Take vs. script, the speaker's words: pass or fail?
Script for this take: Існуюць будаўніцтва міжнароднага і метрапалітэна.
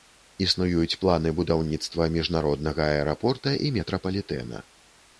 fail